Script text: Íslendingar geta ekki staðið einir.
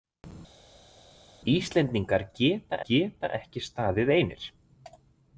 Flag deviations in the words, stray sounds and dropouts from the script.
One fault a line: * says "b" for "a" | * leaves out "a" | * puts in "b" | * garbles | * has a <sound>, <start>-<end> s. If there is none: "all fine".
* puts in "geta"